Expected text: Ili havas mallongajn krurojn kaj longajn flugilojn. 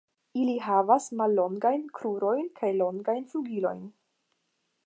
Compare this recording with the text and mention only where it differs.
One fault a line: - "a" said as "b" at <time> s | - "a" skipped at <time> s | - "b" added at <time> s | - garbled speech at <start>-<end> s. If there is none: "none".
none